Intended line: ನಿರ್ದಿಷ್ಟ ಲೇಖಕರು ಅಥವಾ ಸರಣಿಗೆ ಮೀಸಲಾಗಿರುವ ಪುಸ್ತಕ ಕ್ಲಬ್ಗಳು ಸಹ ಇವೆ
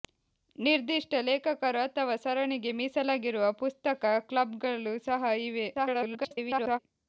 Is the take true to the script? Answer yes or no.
no